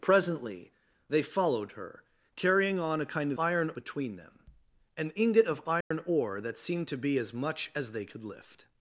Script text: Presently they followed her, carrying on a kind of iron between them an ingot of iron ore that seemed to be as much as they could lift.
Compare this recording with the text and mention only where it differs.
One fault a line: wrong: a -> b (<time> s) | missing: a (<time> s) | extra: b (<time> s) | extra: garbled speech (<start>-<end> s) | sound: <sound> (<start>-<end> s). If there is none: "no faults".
sound: dropout (5.8-5.9 s)